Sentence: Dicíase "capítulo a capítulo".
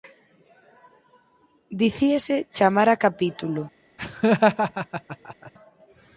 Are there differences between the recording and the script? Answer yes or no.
yes